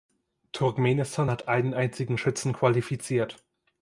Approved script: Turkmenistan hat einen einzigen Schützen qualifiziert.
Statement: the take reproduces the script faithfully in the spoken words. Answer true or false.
true